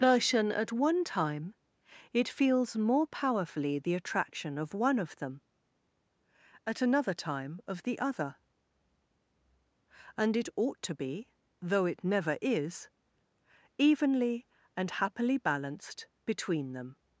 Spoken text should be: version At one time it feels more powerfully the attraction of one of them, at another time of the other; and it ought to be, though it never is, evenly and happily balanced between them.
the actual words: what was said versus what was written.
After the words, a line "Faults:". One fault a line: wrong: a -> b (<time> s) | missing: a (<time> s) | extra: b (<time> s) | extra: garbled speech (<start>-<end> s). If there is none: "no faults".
version At one time it feels more powerfully the attraction of one of them, at another time of the other; and it ought to be, though it never is, evenly and happily balanced between them.
Faults:
no faults